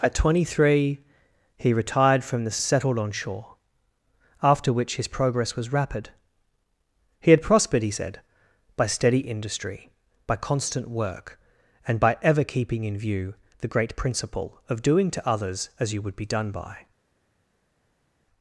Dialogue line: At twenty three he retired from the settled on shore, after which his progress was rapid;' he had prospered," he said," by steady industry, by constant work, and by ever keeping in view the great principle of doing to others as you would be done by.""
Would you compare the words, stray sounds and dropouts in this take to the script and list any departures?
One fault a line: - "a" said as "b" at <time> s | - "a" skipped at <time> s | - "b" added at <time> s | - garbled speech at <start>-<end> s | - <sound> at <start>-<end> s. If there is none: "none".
none